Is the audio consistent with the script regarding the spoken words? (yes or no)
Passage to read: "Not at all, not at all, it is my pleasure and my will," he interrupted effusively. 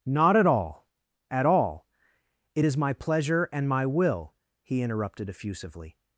no